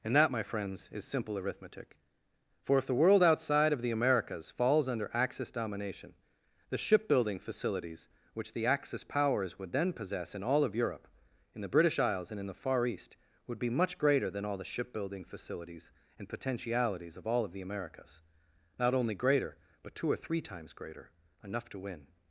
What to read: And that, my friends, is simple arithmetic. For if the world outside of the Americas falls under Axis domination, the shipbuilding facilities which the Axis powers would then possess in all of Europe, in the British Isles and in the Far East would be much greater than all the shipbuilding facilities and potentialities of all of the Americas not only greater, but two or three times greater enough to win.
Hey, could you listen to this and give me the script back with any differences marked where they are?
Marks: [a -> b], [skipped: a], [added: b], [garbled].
And that, my friends, is simple arithmetic. For if the world outside of the Americas falls under Axis domination, the shipbuilding facilities which the Axis powers would then possess in all of Europe, in the British Isles and in the Far East would be much greater than all the shipbuilding facilities and potentialities of all of the Americas not only greater, but two or three times greater enough to win.